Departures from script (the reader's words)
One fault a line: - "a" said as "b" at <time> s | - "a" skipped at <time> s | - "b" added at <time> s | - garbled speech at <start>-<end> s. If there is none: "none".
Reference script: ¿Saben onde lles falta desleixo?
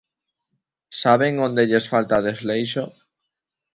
none